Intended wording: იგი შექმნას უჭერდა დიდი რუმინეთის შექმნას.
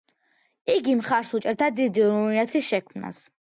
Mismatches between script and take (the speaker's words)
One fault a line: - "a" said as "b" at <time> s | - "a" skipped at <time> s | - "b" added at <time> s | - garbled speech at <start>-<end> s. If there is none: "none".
- "შექმნას" said as "მხარს" at 1.0 s